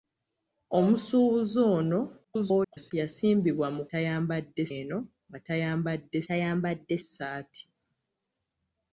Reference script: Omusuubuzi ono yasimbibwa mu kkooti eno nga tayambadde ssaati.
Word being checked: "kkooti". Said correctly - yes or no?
no